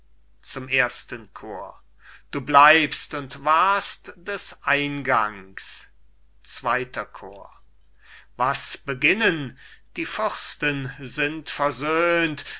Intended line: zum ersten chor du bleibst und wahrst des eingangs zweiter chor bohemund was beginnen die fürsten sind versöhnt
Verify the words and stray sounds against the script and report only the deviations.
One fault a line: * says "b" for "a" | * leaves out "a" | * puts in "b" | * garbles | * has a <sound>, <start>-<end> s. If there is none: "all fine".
all fine